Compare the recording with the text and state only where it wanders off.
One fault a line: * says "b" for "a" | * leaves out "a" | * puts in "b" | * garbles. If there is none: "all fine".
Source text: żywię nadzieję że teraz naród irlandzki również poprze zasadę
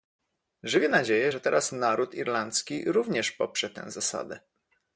* puts in "tę"